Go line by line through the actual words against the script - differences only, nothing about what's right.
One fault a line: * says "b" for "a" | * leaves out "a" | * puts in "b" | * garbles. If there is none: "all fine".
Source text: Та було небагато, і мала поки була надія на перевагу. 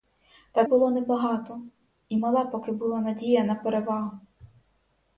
all fine